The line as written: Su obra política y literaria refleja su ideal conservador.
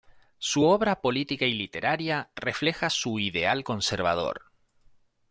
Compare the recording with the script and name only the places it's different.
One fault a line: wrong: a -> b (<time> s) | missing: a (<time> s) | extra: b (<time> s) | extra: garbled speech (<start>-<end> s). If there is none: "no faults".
no faults